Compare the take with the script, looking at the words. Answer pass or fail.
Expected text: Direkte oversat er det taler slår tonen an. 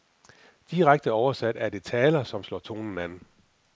fail